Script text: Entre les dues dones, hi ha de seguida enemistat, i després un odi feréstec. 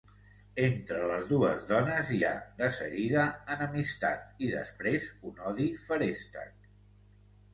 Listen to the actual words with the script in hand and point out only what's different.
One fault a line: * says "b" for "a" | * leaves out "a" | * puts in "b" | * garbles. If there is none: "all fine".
all fine